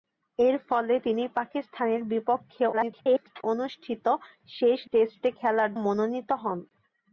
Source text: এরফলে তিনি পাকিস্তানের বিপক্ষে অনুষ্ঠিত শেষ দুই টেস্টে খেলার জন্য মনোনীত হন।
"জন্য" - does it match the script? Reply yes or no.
no